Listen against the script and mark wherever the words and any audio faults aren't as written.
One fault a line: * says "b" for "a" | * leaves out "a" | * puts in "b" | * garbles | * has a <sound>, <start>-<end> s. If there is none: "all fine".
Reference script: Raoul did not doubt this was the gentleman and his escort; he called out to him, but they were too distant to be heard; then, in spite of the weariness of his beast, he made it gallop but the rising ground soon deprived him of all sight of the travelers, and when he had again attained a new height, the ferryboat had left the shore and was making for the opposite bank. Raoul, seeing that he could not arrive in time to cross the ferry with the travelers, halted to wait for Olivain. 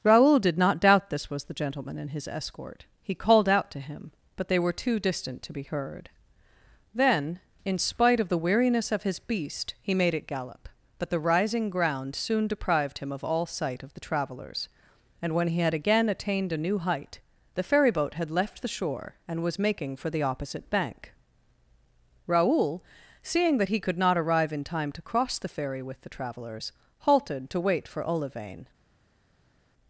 all fine